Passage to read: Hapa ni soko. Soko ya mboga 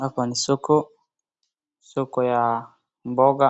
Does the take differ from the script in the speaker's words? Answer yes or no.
no